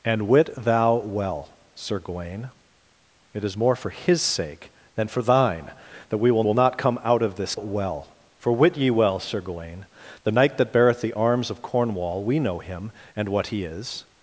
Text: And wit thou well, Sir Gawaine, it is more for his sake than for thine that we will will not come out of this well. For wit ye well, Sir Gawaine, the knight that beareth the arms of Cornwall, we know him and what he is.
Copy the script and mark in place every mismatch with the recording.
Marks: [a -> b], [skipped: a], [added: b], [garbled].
And wit thou well, Sir Gawaine, it is more for his sake than for thine that we will will not come out of this well. For wit ye well, Sir Gawaine, the knight that beareth the arms of Cornwall, we know him and what he is.